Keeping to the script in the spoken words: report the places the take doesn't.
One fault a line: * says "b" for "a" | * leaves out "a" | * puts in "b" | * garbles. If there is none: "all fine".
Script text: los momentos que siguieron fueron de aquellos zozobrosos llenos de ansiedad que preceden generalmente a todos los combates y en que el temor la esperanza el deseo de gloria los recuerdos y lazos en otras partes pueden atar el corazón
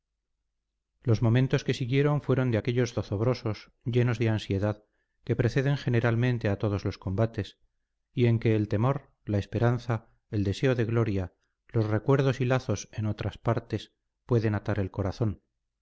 all fine